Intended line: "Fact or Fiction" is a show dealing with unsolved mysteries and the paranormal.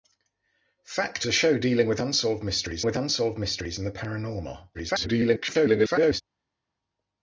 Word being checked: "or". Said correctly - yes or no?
no